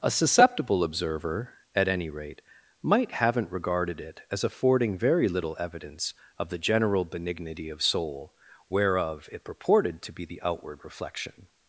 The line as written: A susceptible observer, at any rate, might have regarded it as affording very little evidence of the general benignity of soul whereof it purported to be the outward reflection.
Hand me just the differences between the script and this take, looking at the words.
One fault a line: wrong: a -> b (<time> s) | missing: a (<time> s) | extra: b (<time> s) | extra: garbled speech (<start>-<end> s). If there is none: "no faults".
wrong: have -> haven't (3.1 s)